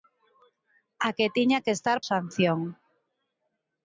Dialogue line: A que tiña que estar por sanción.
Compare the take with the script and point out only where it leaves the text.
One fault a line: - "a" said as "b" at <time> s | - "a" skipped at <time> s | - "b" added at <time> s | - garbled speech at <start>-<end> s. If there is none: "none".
- "por" skipped at 2.0 s